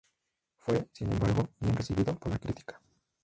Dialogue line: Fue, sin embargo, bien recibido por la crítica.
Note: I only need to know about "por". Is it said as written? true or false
true